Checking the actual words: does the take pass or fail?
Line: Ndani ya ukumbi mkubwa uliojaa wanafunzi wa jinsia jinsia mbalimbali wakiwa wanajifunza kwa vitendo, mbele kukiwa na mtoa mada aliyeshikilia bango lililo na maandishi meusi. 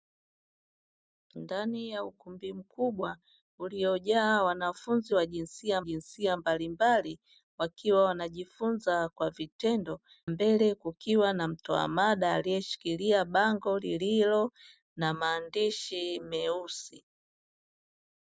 pass